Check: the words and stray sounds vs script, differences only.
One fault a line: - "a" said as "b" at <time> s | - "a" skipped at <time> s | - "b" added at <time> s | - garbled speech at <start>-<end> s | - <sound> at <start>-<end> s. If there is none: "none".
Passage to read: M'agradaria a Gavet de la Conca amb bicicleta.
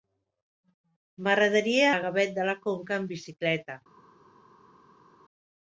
none